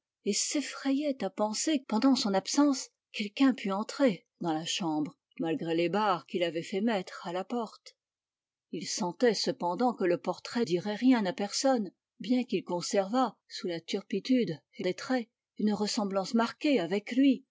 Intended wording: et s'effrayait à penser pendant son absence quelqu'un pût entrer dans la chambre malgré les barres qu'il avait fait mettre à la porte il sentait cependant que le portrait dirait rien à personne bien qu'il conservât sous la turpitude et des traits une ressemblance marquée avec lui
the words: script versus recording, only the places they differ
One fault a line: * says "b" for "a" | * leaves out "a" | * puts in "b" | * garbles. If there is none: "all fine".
all fine